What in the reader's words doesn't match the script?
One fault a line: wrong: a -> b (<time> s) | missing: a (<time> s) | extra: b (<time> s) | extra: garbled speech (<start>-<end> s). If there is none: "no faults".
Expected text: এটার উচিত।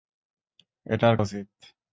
no faults